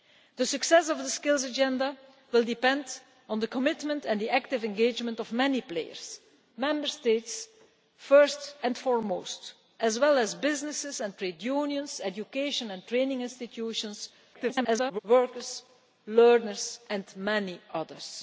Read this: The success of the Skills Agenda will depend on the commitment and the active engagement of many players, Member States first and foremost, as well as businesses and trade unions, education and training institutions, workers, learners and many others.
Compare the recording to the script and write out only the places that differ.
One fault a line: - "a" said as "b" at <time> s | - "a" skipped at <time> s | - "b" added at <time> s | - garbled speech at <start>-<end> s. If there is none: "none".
- garbled speech at 14.3-15.0 s